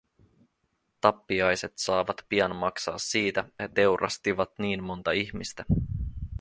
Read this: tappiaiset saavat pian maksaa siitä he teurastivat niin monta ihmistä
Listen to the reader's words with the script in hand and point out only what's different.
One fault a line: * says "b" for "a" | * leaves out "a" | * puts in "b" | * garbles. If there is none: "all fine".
all fine